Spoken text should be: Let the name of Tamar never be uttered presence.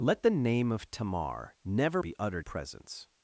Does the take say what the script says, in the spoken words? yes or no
yes